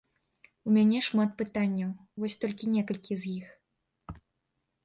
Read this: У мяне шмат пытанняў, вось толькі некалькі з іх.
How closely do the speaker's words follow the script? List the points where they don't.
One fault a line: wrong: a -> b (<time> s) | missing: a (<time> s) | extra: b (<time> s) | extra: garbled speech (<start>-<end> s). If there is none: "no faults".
no faults